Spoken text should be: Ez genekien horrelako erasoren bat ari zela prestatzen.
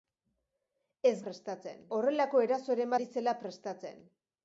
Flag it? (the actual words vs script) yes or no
yes